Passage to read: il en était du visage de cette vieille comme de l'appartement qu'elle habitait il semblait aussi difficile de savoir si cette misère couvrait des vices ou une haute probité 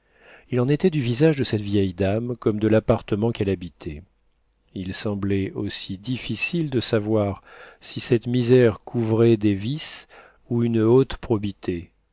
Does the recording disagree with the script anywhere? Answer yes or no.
yes